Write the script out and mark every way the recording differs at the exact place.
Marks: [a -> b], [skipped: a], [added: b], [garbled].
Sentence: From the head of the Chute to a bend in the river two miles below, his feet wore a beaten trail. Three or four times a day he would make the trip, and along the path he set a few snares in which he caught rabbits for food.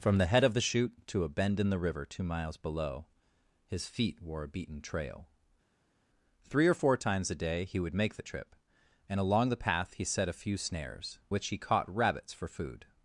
From the head of the Chute to a bend in the river two miles below, his feet wore a beaten trail. Three or four times a day he would make the trip, and along the path he set a few snares [skipped: in] which he caught rabbits for food.